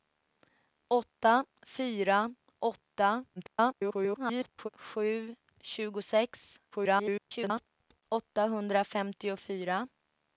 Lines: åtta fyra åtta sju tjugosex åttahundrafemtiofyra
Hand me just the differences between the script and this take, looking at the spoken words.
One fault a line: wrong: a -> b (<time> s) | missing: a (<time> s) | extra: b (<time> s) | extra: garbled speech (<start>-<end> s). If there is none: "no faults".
extra: garbled speech (3.4-4.7 s)
extra: garbled speech (6.7-8.0 s)